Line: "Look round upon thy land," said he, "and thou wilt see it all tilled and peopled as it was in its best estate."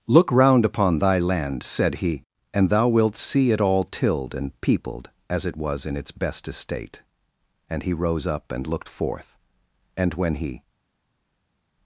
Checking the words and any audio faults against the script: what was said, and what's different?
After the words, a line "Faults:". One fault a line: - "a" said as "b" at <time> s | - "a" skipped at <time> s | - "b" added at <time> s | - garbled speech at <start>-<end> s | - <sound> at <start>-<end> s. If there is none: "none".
"Look round upon thy land," said he, "and thou wilt see it all tilled and peopled as it was in its best estate." And he rose up and looked forth. And when he
Faults:
- "And he rose up and looked forth And when he" added at 7.7 s